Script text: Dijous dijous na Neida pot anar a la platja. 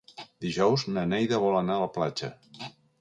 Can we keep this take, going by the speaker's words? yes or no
no